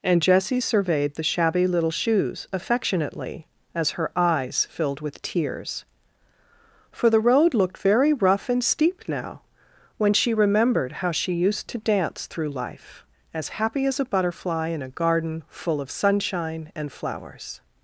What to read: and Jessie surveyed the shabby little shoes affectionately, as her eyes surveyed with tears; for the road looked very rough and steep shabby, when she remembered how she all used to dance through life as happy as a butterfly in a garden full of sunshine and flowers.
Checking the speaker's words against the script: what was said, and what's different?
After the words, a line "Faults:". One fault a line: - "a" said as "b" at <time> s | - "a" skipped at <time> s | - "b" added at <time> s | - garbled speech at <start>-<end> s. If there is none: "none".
and Jessie surveyed the shabby little shoes affectionately, as her eyes filled with tears; for the road looked very rough and steep now, when she remembered how she used to dance through life as happy as a butterfly in a garden full of sunshine and flowers.
Faults:
- "surveyed" said as "filled" at 4.7 s
- "shabby" said as "now" at 9.1 s
- "all" skipped at 11.3 s